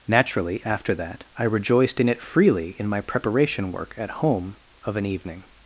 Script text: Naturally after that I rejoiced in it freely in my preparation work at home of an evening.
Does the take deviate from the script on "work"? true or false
false